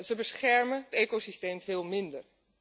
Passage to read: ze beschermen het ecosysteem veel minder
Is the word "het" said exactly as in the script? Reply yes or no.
no